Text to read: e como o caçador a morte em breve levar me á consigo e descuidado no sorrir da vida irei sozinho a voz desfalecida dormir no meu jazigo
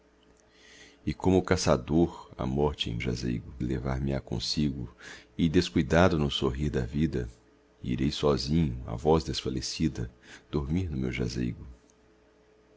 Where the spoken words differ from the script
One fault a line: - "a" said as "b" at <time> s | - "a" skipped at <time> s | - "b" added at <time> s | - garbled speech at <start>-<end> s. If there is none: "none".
- "breve" said as "jazigo" at 3.0 s